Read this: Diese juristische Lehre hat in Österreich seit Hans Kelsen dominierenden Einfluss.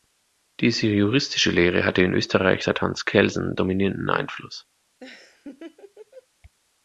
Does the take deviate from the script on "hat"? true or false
true